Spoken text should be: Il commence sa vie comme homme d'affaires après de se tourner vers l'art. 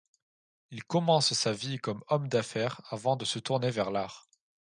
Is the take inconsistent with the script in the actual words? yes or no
yes